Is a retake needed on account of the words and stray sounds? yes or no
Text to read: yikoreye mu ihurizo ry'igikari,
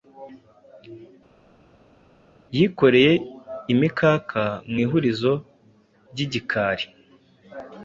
yes